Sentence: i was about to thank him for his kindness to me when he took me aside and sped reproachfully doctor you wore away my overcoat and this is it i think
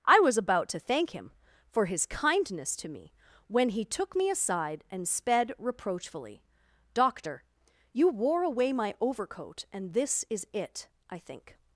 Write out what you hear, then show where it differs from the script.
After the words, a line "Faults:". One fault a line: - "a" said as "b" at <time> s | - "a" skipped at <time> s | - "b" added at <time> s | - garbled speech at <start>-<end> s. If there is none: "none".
i was about to thank him for his kindness to me when he took me aside and sped reproachfully doctor you wore away my overcoat and this is it i think
Faults:
none